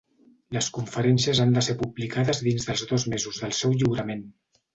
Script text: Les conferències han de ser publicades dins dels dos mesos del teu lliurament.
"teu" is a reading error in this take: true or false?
true